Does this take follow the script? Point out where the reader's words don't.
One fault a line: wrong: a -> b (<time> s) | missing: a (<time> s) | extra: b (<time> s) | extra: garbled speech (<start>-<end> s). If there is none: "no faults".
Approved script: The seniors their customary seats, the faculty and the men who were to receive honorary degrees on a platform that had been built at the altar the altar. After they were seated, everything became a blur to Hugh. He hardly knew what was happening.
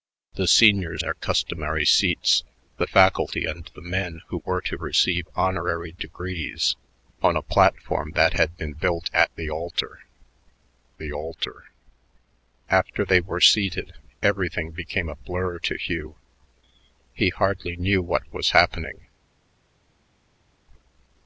no faults